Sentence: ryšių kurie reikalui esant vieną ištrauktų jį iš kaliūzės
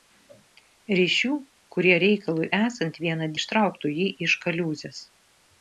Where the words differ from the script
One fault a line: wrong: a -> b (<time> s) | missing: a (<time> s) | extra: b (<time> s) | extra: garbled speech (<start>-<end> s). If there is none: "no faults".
no faults